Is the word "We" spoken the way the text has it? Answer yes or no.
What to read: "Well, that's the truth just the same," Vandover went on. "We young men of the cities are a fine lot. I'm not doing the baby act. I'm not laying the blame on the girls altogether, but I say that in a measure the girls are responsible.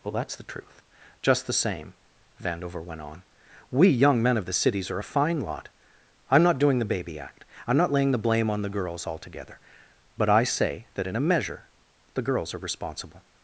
yes